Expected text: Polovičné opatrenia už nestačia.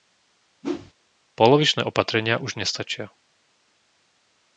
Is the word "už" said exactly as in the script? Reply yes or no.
yes